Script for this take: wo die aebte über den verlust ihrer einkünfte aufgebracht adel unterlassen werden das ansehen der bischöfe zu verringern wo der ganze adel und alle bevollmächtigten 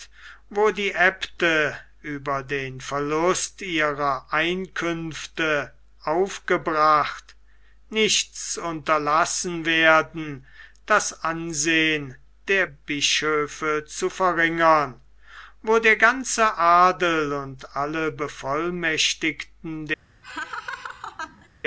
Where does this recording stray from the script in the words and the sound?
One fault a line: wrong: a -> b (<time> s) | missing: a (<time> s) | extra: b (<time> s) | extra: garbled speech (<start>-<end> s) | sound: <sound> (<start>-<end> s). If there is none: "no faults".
wrong: adel -> nichts (7.9 s)
sound: laugh (20.2-21.5 s)